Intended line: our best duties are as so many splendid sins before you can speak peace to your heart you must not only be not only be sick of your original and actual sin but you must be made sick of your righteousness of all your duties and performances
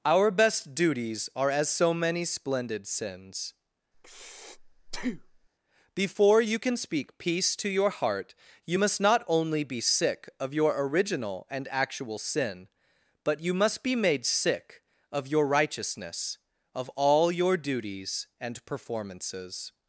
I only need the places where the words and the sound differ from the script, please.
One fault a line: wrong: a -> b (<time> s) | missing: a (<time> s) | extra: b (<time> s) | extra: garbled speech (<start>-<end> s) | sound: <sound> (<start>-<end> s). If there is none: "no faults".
sound: breath (3.9-5.5 s)
missing: not only be (9.8 s)